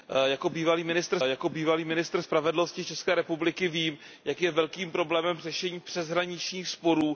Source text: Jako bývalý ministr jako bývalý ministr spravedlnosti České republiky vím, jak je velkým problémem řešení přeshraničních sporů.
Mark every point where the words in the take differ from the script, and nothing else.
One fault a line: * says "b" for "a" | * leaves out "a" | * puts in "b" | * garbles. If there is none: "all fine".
all fine